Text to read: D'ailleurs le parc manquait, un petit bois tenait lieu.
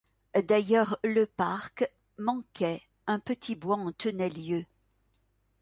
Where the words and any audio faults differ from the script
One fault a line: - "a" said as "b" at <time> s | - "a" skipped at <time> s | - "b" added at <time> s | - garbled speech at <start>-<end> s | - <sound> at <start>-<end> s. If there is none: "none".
- "en" added at 3.8 s